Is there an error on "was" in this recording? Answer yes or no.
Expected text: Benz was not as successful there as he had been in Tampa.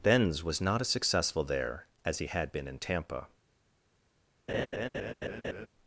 no